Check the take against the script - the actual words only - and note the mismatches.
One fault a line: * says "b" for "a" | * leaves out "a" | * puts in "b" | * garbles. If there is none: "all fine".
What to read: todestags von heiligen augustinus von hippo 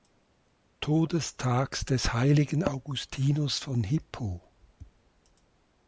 * says "des" for "von"